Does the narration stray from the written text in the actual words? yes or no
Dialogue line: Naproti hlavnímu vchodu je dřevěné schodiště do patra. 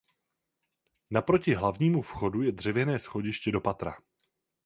no